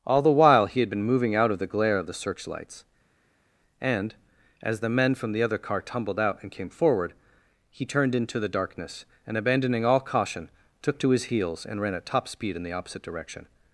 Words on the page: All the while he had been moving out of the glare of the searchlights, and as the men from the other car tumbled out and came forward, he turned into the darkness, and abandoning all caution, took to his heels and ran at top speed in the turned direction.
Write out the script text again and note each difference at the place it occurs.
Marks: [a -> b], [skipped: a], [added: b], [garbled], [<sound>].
All the while he had been moving out of the glare of the searchlights, and as the men from the other car tumbled out and came forward, he turned into the darkness, and abandoning all caution, took to his heels and ran at top speed in the [turned -> opposite] direction.